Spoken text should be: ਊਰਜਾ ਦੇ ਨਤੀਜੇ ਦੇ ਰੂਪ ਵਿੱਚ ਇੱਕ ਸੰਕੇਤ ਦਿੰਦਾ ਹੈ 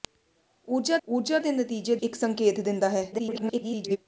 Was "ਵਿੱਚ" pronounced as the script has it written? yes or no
no